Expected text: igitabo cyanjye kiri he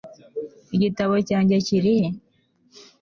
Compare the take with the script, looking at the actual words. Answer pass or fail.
pass